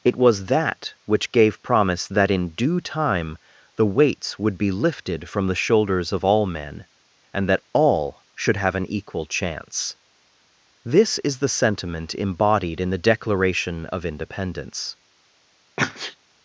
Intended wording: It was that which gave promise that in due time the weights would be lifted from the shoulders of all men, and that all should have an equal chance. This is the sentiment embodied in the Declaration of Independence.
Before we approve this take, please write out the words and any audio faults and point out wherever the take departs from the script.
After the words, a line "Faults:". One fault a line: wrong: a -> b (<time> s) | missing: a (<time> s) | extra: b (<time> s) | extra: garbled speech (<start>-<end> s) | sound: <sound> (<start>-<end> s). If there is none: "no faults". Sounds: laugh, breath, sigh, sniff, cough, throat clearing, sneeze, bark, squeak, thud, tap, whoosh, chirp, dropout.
It was that which gave promise that in due time the weights would be lifted from the shoulders of all men, and that all should have an equal chance. This is the sentiment embodied in the Declaration of Independence.
Faults:
sound: sneeze (15.8-16.2 s)